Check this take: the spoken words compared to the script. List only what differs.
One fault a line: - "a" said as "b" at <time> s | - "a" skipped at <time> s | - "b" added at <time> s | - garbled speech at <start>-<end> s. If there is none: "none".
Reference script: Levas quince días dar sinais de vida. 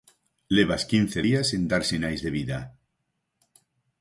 - "sen" added at 1.5 s